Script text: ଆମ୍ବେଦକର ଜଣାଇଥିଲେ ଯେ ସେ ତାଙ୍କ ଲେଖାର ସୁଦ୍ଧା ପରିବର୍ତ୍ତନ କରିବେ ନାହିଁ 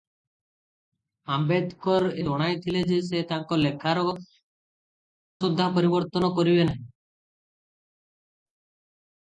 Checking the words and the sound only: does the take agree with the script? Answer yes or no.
yes